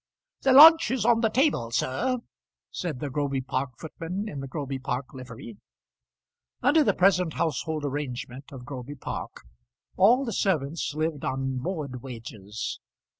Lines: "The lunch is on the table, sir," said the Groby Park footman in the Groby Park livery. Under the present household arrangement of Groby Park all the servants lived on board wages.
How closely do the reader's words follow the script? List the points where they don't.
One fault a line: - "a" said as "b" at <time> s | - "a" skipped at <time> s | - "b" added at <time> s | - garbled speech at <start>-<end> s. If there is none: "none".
none